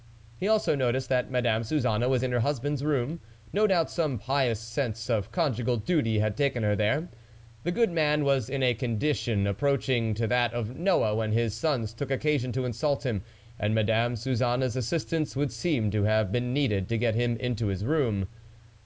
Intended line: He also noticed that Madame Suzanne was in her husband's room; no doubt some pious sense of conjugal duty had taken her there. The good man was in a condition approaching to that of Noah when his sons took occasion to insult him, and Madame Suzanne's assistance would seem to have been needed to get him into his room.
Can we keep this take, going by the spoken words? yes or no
yes